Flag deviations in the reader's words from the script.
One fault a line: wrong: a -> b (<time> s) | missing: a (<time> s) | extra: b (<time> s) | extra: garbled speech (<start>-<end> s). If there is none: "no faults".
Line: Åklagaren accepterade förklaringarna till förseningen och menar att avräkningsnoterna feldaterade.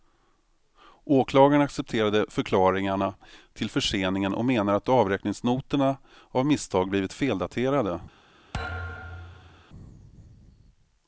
extra: av misstag blivit (6.3 s)